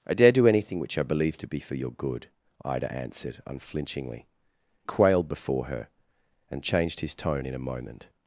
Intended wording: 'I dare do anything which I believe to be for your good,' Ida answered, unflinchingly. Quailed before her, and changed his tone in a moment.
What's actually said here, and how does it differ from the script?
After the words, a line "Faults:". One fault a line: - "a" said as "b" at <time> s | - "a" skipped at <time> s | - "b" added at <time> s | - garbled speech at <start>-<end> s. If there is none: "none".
'I dare do anything which I believe to be for your good,' Ida answered, unflinchingly. Quailed before her, and changed his tone in a moment.
Faults:
none